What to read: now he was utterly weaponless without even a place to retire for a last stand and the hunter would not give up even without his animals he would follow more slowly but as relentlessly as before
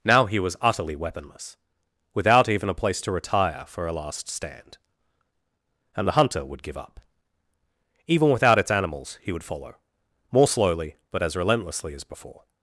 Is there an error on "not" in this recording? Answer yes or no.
yes